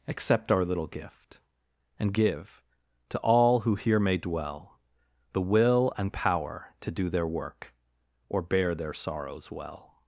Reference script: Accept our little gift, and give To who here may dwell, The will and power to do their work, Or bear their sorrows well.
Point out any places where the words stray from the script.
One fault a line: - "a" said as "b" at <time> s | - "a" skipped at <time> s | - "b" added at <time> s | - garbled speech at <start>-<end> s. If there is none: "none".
- "all" added at 3.2 s